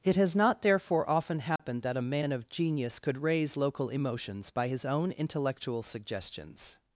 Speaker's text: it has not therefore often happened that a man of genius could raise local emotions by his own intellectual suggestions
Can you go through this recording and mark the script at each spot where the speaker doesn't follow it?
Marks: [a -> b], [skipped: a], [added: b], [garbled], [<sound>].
it has not therefore often happened [dropout] that a man of genius could raise local emotions by his own intellectual suggestions